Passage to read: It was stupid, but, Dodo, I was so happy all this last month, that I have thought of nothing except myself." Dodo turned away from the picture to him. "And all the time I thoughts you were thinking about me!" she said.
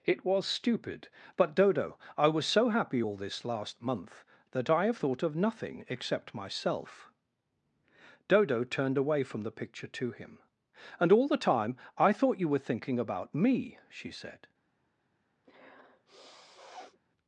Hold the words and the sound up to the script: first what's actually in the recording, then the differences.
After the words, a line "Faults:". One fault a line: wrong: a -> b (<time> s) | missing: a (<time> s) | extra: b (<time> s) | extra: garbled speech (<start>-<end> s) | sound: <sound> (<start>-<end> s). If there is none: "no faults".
It was stupid, but, Dodo, I was so happy all this last month, that I have thought of nothing except myself." Dodo turned away from the picture to him. "And all the time I thought you were thinking about me!" she said.
Faults:
wrong: thoughts -> thought (12.1 s)
sound: sniff (15.4-17.0 s)